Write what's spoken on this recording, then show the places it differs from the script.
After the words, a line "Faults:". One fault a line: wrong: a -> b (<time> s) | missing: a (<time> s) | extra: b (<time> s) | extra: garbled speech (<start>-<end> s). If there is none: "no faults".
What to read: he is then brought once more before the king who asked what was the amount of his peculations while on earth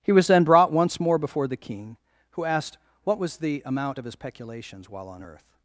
he was then brought once more before the king who asked what was the amount of his peculations while on earth
Faults:
wrong: is -> was (0.1 s)